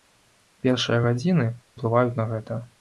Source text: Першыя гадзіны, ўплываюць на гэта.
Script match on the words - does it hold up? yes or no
yes